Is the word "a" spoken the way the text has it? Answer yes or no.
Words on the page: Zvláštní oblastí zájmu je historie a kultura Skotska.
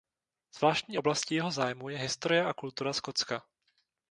yes